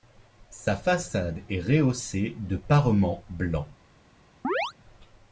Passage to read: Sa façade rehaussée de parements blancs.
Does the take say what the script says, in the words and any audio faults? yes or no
no